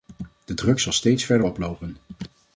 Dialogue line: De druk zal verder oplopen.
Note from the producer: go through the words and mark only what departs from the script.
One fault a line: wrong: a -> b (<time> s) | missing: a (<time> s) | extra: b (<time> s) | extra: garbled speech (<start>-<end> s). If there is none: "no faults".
extra: steeds (0.9 s)